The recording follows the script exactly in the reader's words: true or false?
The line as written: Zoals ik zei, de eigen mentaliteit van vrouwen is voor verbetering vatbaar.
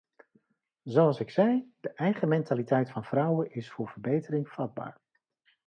true